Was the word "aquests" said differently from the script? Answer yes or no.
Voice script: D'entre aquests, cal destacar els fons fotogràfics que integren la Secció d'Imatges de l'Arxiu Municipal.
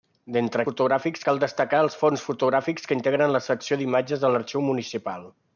yes